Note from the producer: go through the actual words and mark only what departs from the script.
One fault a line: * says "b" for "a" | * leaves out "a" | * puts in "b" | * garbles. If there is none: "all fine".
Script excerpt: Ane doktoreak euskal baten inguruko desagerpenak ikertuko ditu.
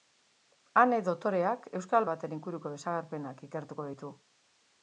all fine